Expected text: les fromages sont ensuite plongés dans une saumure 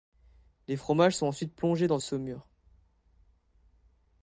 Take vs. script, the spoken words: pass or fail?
fail